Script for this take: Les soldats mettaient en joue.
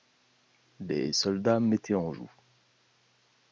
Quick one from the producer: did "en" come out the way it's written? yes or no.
yes